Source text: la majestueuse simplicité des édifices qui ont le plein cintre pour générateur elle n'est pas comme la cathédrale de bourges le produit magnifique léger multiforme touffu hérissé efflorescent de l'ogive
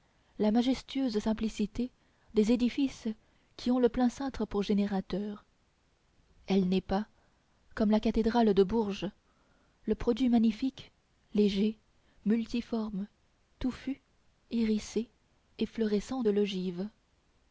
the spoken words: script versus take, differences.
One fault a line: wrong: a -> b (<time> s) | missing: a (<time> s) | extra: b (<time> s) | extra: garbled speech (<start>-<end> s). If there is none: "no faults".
no faults